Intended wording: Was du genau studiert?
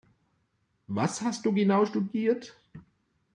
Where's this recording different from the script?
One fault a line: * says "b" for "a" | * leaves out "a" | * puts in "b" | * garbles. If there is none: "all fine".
* puts in "hast"